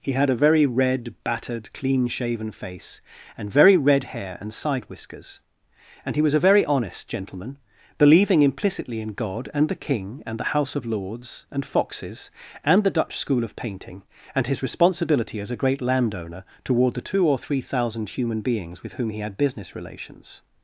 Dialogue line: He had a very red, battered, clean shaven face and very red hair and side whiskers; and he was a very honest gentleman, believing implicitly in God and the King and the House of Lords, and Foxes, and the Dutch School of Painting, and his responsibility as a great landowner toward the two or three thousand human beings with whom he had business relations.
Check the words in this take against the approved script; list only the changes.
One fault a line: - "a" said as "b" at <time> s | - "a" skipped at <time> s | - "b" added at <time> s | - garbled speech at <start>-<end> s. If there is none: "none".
none